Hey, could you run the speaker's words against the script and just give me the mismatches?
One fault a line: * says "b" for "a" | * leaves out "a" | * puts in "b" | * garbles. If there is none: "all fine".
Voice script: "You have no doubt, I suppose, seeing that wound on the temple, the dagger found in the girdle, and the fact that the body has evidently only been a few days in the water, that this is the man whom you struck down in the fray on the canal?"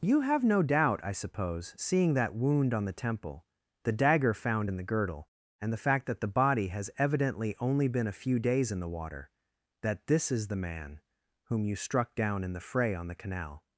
all fine